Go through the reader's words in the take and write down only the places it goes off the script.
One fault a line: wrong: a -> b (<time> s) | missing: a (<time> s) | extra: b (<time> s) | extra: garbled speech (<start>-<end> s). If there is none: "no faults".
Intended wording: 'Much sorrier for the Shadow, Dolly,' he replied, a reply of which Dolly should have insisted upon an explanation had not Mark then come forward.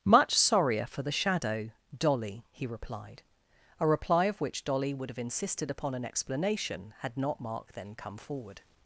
wrong: should -> would (5.0 s)